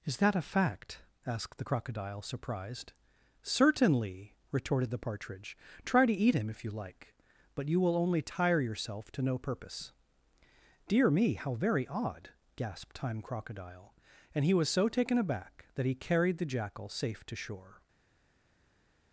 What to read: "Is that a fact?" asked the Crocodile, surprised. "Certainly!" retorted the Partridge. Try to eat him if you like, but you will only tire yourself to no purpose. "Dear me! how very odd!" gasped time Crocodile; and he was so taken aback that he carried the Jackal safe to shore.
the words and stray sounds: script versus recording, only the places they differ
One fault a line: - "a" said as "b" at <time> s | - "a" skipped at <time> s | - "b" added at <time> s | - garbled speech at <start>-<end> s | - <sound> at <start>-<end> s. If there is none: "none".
none